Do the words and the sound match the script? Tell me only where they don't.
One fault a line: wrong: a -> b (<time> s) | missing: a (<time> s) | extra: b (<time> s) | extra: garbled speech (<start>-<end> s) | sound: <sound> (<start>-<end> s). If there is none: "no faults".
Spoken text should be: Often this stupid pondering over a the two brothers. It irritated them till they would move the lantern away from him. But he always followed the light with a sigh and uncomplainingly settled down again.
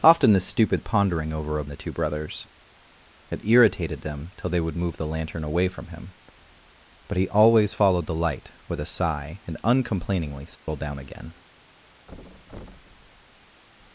sound: dropout (10.6-10.7 s)
sound: thud (12.1-13.6 s)